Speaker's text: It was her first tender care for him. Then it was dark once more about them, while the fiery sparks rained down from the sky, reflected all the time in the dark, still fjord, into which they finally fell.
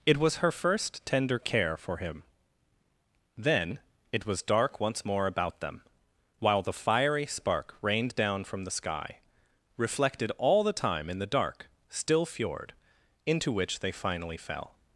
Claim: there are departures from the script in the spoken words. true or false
true